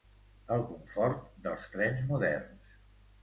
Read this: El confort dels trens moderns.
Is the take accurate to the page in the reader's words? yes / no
yes